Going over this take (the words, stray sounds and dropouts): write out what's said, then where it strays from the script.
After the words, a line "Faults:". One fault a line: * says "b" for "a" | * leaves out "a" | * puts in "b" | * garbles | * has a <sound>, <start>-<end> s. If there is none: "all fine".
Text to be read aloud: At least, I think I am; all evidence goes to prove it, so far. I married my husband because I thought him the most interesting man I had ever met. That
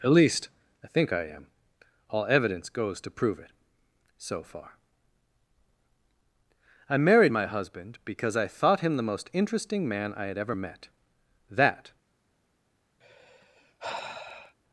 At least, I think I am; all evidence goes to prove it, so far. I married my husband because I thought him the most interesting man I had ever met. That
Faults:
* has a sigh, 13.0-14.6 s